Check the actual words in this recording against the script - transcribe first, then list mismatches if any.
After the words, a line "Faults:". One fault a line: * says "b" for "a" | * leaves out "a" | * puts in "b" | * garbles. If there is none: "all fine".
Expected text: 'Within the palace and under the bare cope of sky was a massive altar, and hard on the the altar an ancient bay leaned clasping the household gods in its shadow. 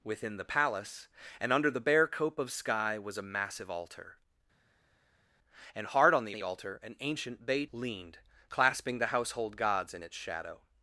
'Within the palace and under the bare cope of sky was a massive altar, and hard on the the altar an ancient bay leaned clasping the household gods in its shadow.
Faults:
all fine